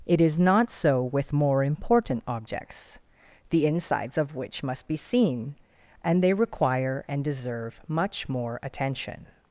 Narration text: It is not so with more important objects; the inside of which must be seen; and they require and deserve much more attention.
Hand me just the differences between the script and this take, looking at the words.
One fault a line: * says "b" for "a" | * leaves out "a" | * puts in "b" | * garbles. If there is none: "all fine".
* says "insides" for "inside"